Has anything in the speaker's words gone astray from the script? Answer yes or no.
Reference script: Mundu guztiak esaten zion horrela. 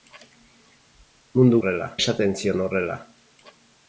yes